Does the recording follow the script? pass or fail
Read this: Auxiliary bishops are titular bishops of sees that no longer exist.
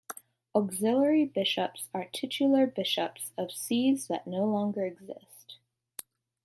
pass